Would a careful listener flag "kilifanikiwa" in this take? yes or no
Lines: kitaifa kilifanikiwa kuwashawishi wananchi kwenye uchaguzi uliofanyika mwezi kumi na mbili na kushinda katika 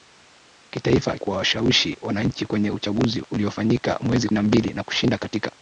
yes